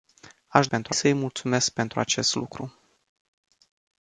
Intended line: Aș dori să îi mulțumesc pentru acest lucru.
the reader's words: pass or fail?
fail